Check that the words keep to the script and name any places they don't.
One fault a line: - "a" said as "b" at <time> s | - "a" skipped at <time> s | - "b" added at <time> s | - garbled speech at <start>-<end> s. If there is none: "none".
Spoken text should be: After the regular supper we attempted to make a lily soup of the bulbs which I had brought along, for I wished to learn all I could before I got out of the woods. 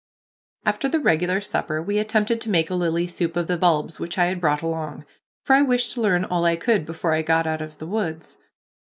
none